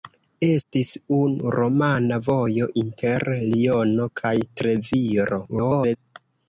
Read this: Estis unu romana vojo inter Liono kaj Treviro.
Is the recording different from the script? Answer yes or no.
yes